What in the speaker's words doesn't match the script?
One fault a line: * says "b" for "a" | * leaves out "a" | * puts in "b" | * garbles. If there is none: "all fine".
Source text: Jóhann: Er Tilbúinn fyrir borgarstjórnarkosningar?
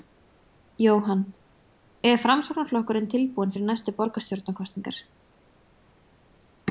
* puts in "Framsóknarflokkurinn"
* puts in "næstu"